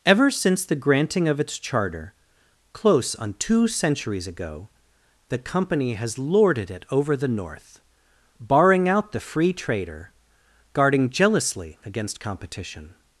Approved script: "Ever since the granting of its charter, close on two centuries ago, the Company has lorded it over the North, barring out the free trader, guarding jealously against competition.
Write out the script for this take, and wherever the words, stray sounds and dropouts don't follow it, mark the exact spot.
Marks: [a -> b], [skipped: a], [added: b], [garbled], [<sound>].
"Ever since the granting of its charter, close on two centuries ago, the Company has lorded it over the North, barring out the free trader, guarding jealously against competition.